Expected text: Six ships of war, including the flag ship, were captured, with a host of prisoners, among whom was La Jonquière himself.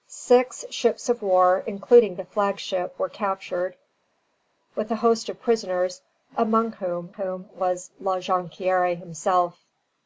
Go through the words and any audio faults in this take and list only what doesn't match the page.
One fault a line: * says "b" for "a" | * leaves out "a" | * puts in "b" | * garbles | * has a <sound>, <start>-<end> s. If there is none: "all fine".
* puts in "whom"